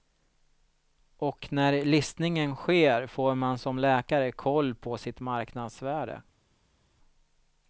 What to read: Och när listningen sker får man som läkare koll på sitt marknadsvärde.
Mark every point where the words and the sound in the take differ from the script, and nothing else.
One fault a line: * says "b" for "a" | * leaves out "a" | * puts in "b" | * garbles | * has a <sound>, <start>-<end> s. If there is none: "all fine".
all fine